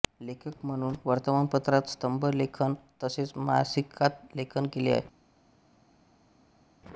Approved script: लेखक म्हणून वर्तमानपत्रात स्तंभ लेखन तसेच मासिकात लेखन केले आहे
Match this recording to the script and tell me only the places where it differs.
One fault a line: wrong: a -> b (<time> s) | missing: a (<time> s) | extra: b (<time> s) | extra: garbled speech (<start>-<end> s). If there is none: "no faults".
no faults